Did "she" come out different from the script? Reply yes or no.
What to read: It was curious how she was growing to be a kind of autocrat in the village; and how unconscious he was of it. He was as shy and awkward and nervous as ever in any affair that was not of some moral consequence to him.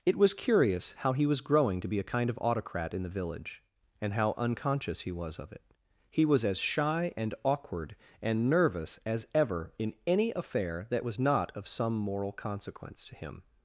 yes